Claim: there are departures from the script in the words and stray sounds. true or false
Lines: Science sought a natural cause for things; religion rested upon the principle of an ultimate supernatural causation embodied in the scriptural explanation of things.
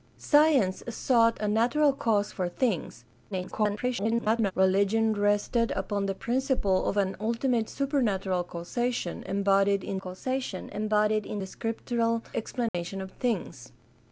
true